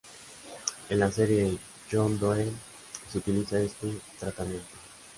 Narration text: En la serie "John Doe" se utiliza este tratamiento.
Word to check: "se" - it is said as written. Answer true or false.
true